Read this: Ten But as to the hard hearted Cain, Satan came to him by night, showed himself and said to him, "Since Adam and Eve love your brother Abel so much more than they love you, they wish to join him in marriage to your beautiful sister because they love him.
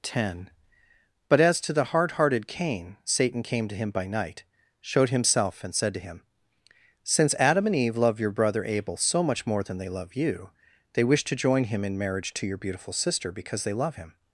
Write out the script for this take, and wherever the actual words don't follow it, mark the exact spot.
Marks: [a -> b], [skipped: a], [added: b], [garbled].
Ten But as to the hard hearted Cain, Satan came to him by night, showed himself and said to him, "Since Adam and Eve love your brother Abel so much more than they love you, they wish to join him in marriage to your beautiful sister because they love him.